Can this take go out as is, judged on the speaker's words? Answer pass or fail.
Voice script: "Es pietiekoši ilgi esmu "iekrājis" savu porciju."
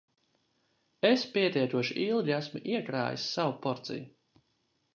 pass